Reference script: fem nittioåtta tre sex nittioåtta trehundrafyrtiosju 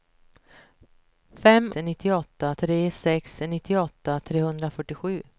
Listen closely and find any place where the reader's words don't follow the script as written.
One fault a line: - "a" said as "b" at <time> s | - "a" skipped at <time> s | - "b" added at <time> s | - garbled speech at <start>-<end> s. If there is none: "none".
none